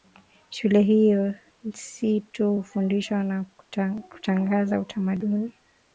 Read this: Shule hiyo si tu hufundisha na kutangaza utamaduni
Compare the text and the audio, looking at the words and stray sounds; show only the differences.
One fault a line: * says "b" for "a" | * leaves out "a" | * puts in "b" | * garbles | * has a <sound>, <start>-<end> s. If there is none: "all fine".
all fine